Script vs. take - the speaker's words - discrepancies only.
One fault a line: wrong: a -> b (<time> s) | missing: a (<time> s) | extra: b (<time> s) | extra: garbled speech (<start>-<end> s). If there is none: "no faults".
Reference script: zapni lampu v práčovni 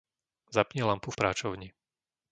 no faults